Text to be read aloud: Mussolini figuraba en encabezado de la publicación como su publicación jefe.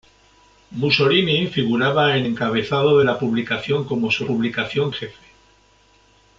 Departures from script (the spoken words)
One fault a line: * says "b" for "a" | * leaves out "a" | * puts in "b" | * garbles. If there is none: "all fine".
all fine